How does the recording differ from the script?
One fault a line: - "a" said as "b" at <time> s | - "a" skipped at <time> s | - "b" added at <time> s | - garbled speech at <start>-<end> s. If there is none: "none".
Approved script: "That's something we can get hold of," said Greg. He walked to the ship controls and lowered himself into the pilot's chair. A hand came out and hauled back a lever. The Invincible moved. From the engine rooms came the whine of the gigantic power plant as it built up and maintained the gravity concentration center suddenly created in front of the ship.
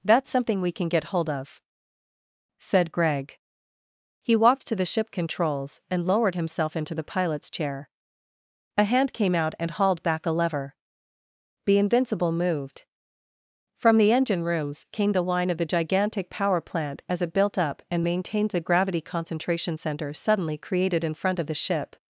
none